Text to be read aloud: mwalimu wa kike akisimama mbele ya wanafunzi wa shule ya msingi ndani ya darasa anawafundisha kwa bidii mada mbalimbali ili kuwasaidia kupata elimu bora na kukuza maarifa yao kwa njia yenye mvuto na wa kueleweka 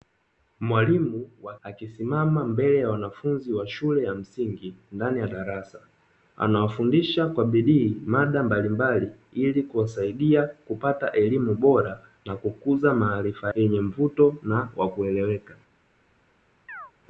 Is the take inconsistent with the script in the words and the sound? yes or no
yes